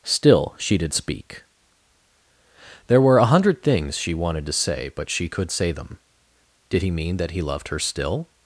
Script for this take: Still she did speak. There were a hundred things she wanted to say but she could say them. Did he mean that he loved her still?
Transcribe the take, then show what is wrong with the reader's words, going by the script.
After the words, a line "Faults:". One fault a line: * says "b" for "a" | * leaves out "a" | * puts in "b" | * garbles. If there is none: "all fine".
Still she did speak. There were a hundred things she wanted to say but she could say them. Did he mean that he loved her still?
Faults:
all fine